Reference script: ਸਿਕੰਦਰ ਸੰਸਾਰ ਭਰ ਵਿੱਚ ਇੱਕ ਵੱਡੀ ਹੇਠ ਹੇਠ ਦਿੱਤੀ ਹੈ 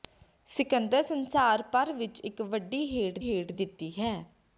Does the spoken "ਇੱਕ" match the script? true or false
true